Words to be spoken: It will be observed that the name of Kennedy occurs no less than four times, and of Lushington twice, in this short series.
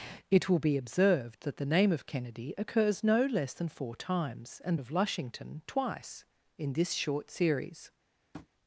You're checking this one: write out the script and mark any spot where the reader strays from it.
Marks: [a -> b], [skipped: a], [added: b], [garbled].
It will be observed that the name of Kennedy occurs no less than four times, and of Lushington twice, in this short series.